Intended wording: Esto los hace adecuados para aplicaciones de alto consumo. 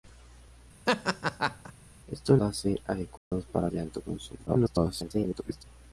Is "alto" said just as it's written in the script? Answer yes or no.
yes